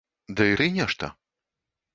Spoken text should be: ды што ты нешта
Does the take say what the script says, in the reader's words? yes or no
no